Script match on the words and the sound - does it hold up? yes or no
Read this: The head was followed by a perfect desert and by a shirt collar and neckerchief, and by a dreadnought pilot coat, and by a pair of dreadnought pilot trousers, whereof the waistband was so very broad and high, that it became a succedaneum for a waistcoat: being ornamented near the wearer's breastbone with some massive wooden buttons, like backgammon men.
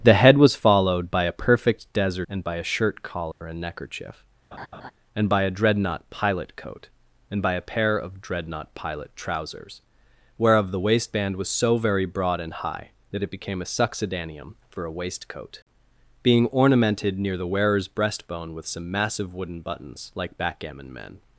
no